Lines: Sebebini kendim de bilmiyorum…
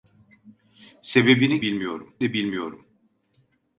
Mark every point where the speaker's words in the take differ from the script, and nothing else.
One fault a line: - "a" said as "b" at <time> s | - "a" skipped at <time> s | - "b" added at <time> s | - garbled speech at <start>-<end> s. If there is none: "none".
- "kendim" said as "bilmiyorum" at 1.6 s